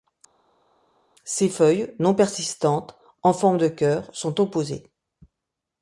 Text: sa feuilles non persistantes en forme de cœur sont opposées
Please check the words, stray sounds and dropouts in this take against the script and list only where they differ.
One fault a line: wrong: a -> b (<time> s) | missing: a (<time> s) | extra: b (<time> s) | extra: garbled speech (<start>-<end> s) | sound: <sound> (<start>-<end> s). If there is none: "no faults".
wrong: sa -> ses (1.2 s)